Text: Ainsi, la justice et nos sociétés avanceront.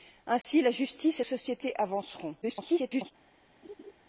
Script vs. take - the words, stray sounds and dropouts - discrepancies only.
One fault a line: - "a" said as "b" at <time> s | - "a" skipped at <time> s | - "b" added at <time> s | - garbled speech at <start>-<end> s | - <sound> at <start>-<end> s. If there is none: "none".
- dropout at 0.4-0.4 s
- "nos" skipped at 1.2 s
- garbled speech at 2.4-3.1 s
- laugh at 3.6-3.9 s